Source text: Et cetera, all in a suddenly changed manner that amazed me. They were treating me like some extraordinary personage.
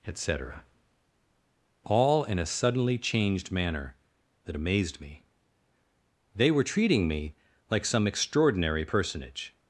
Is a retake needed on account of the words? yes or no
no